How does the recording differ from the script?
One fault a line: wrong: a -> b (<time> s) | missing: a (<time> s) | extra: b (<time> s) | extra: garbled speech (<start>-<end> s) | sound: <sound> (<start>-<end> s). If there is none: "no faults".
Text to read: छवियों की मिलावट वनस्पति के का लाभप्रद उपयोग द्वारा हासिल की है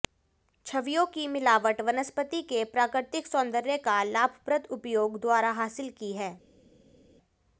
extra: प्राकृतिक सौंदर्य (2.7 s)